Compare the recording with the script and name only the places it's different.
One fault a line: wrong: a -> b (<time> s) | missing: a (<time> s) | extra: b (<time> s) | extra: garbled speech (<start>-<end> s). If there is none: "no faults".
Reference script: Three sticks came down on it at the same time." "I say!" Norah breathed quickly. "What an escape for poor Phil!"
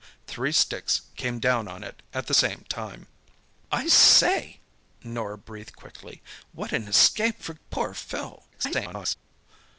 extra: garbled speech (8.5-9.2 s)